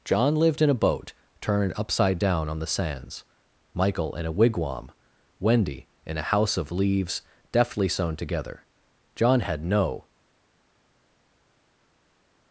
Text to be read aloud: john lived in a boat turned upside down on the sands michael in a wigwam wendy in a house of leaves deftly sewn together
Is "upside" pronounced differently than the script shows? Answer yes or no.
no